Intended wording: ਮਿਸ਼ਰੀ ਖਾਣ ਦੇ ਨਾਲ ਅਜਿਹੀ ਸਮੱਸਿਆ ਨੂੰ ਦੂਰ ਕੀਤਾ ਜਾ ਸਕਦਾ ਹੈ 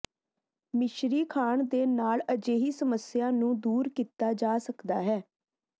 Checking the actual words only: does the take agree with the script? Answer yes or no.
yes